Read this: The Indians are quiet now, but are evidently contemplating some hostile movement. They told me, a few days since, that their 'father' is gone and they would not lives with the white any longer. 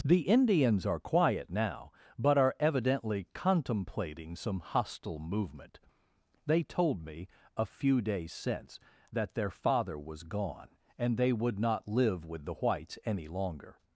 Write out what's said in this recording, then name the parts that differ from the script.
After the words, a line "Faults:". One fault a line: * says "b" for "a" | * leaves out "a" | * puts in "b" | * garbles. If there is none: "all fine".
The Indians are quiet now, but are evidently contemplating some hostile movement. They told me, a few days since, that their 'father' was gone and they would not live with the whites any longer.
Faults:
* says "was" for "is"
* says "live" for "lives"
* says "whites" for "white"